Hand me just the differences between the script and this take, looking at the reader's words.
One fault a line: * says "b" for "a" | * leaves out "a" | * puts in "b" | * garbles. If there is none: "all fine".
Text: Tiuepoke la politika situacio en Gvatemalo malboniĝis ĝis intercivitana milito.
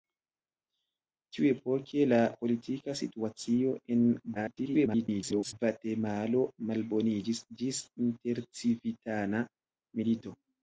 * garbles